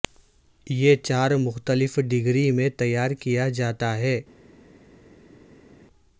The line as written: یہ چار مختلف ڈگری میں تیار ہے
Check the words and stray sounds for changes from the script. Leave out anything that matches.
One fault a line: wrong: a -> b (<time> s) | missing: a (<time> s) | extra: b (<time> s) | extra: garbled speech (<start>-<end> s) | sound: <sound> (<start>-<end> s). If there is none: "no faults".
extra: کیا جاتا (3.2 s)